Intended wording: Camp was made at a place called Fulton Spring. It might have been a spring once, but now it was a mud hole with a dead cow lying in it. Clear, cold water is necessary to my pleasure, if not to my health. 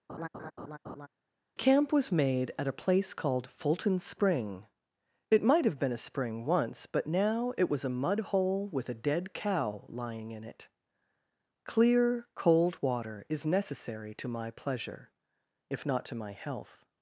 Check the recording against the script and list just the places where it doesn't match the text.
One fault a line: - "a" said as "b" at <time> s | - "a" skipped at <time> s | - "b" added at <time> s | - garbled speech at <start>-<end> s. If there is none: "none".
none